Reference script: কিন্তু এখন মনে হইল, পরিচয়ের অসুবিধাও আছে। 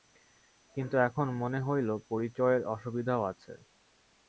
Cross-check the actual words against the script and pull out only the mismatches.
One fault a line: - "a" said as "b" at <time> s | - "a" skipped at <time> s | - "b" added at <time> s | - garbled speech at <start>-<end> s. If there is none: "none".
none